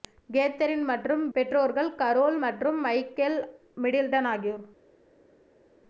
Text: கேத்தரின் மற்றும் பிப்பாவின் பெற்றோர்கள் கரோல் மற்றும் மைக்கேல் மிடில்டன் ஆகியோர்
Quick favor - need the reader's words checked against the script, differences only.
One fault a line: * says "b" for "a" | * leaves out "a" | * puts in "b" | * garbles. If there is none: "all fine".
* leaves out "பிப்பாவின்"